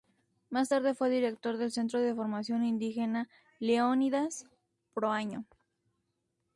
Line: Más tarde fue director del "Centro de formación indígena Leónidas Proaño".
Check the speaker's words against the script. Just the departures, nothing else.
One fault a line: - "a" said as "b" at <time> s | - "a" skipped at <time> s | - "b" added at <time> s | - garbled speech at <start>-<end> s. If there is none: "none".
none